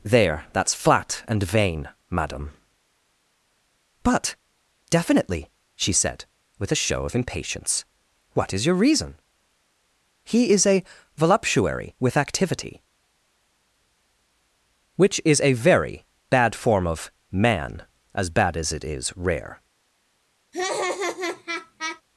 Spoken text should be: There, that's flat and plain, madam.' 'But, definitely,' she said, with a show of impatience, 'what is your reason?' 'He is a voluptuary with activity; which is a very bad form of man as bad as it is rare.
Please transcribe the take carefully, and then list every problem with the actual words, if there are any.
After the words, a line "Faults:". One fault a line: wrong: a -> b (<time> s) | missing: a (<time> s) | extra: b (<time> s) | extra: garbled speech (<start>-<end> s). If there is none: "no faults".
There, that's flat and vain, madam.' 'But, definitely,' she said, with a show of impatience, 'what is your reason?' 'He is a voluptuary with activity; which is a very bad form of man as bad as it is rare.
Faults:
wrong: plain -> vain (1.4 s)